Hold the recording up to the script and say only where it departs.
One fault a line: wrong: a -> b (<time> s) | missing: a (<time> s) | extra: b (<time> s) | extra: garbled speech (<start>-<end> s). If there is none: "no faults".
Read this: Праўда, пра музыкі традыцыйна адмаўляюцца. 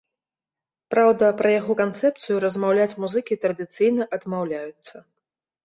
extra: яго канцэпцыю размаўляць (1.6 s)